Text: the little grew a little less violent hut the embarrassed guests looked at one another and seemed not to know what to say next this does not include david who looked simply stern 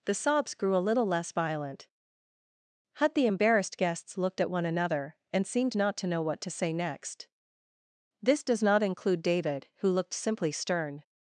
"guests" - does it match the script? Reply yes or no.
yes